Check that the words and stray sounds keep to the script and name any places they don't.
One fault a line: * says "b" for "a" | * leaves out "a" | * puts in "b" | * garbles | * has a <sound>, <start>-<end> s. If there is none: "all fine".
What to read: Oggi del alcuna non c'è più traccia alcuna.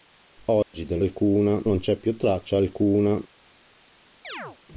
* has a dropout, 0.6-0.7 s
* has a chirp, 4.2-4.6 s